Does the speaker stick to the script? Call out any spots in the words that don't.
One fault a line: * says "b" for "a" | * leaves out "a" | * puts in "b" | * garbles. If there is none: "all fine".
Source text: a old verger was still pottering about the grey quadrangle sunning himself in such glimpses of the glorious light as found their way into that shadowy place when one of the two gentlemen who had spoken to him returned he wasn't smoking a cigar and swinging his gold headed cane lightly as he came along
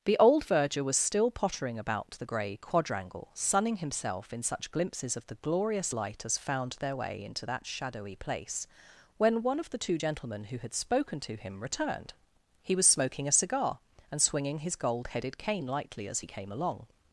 * says "the" for "a"
* says "was" for "wasn't"